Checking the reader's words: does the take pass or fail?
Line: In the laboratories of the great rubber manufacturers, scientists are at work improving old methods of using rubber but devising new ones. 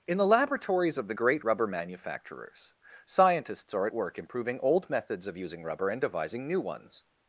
fail